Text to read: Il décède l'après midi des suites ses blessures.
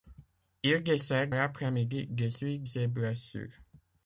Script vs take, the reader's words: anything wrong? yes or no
no